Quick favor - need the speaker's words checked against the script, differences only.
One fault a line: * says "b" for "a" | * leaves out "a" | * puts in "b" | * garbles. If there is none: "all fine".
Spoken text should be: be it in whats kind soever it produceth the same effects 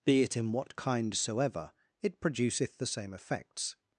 * says "what" for "whats"